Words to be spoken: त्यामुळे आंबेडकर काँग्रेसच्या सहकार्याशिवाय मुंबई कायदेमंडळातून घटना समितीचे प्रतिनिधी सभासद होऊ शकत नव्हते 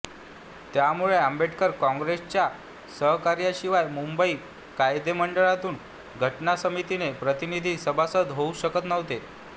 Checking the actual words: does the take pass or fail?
pass